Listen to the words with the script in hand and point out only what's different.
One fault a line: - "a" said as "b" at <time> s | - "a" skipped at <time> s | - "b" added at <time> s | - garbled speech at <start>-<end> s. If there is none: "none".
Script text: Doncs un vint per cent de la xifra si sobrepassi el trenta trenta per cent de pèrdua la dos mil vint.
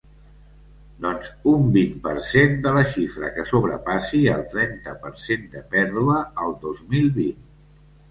- "si" said as "que" at 3.4 s
- "trenta" skipped at 4.9 s
- "la" said as "el" at 6.5 s